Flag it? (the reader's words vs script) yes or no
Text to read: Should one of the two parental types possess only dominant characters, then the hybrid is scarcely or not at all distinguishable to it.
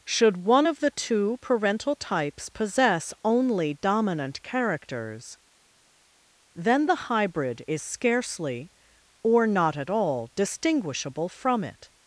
yes